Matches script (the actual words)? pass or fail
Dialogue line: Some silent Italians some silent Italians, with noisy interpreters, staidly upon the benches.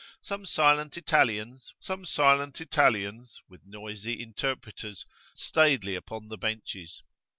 pass